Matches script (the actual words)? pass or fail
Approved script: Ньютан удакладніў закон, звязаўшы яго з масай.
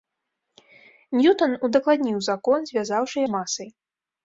fail